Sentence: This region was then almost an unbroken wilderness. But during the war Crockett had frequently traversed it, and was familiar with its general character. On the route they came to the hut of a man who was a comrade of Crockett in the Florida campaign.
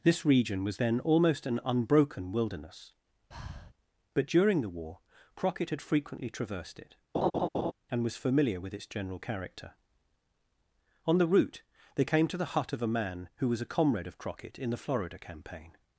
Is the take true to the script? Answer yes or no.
yes